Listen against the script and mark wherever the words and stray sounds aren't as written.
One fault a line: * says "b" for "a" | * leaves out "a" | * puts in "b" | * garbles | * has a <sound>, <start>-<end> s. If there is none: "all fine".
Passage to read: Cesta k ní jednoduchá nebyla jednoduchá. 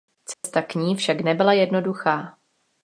* has a dropout, 0.3-0.4 s
* says "však" for "jednoduchá"